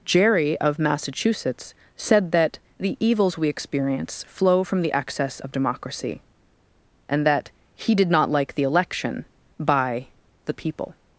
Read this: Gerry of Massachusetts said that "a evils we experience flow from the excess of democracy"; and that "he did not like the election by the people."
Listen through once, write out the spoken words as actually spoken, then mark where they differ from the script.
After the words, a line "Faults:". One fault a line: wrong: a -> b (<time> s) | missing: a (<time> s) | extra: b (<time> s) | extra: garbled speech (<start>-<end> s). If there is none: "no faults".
Gerry of Massachusetts said that "the evils we experience flow from the excess of democracy"; and that "he did not like the election by the people."
Faults:
wrong: a -> the (2.8 s)